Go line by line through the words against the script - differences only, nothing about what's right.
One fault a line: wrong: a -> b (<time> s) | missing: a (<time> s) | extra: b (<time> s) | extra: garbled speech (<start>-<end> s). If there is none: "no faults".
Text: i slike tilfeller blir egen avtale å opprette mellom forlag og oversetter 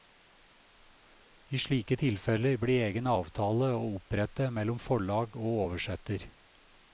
no faults